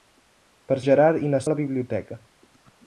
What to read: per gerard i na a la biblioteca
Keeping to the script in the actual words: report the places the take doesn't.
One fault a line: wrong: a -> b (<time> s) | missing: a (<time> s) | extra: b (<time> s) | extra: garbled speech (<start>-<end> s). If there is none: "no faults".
no faults